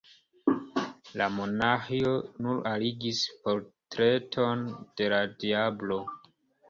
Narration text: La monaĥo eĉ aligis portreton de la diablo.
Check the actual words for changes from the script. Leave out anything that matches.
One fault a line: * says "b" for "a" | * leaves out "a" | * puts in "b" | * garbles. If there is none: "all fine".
* says "nur" for "eĉ"